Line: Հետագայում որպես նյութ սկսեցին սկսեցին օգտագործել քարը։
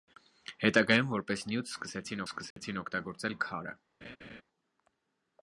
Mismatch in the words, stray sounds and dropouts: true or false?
true